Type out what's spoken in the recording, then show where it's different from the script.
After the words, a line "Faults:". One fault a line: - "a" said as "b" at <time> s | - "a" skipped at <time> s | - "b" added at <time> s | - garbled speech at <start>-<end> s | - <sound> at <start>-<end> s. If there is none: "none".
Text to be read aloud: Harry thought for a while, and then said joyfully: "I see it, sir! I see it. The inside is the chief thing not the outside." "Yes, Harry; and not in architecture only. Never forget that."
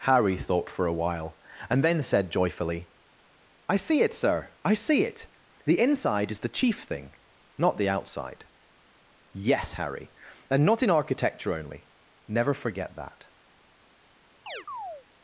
Harry thought for a while, and then said joyfully: "I see it, sir! I see it. The inside is the chief thing not the outside." "Yes, Harry; and not in architecture only. Never forget that."
Faults:
- chirp at 14.5-15.1 s